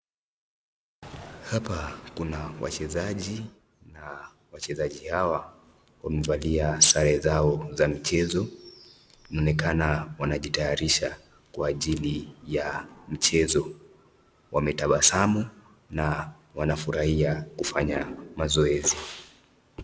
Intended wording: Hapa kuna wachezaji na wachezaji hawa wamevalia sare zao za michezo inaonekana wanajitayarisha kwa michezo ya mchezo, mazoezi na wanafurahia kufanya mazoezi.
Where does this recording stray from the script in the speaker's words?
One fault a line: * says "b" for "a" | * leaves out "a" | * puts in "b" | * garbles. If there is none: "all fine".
* says "ajili" for "michezo"
* says "wametabasamu" for "mazoezi"